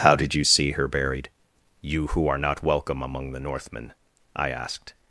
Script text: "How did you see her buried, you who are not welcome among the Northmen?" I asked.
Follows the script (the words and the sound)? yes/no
yes